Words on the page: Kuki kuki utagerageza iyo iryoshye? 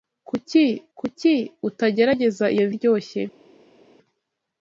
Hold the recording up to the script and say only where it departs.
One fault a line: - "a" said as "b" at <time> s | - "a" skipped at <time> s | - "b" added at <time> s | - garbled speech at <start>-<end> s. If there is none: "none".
none